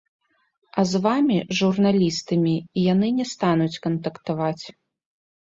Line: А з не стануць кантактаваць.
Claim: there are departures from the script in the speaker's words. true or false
true